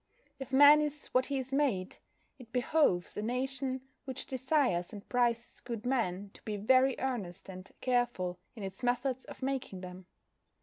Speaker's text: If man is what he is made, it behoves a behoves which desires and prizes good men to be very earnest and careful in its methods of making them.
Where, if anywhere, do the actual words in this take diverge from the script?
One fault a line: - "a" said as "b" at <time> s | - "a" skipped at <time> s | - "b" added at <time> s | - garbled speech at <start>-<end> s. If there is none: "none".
- "behoves" said as "nation" at 3.2 s